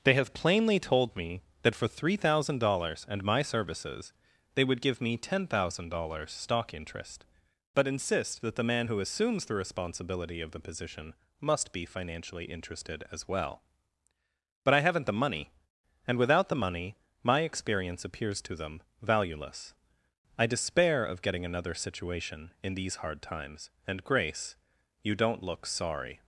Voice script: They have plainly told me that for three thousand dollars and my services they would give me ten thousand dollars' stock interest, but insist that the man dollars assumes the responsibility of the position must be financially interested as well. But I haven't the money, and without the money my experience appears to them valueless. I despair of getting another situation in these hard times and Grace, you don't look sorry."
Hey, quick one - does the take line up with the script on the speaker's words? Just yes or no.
no